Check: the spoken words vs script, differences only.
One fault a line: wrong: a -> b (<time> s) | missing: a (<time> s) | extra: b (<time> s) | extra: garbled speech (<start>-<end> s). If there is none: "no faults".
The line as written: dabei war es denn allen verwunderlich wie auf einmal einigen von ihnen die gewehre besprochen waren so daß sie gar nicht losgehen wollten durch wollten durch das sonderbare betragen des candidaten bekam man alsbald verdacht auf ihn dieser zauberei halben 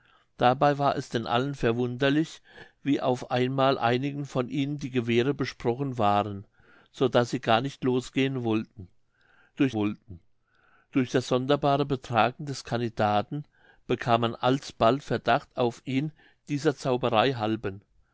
no faults